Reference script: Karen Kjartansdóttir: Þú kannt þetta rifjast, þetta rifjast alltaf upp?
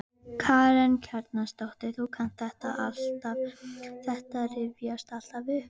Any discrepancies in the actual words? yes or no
yes